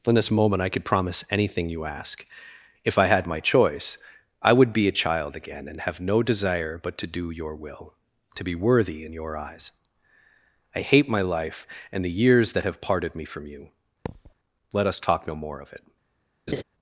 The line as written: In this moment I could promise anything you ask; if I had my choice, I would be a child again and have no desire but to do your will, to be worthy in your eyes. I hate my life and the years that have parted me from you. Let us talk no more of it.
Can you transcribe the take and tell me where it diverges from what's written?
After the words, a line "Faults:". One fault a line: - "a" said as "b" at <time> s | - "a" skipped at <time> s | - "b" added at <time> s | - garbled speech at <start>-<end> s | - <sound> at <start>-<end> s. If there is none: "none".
In this moment I could promise anything you ask; if I had my choice, I would be a child again and have no desire but to do your will, to be worthy in your eyes. I hate my life and the years that have parted me from you. Let us talk no more of it.
Faults:
- thud at 14.1-14.3 s
- laugh at 16.5-16.6 s